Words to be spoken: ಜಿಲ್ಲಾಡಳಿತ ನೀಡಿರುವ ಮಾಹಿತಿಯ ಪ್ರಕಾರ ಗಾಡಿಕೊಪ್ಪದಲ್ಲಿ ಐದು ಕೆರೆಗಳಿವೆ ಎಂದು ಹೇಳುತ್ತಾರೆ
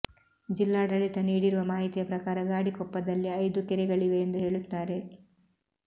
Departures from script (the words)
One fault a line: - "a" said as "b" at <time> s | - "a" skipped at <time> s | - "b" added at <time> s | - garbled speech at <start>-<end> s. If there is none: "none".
none